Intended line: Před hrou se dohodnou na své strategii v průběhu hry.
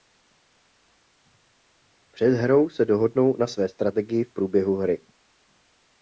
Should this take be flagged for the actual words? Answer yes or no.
no